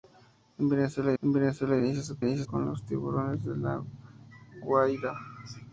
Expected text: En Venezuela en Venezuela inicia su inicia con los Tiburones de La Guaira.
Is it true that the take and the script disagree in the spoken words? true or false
false